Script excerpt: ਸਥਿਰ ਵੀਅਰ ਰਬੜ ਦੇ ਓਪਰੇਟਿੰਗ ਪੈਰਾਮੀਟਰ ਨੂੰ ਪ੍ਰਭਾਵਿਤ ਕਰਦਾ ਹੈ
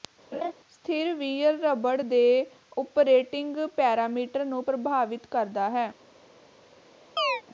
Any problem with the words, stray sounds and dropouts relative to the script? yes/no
yes